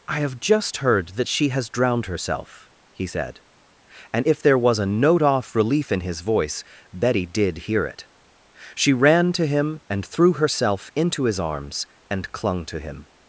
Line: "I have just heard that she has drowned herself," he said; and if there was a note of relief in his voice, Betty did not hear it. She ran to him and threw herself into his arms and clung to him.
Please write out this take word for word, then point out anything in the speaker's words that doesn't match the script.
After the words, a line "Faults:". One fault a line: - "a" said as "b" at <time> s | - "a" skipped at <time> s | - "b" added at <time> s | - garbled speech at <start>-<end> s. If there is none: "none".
"I have just heard that she has drowned herself," he said; and if there was a note off relief in his voice, Betty did hear it. She ran to him and threw herself into his arms and clung to him.
Faults:
- "of" said as "off" at 5.2 s
- "not" skipped at 7.6 s